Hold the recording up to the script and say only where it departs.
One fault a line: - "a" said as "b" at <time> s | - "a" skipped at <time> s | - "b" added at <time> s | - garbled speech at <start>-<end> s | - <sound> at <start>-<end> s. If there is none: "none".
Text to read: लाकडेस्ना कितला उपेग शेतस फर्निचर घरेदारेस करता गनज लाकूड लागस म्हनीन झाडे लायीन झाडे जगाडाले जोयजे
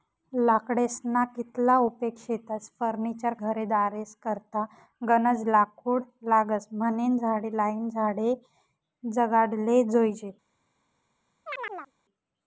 - chirp at 11.5-11.9 s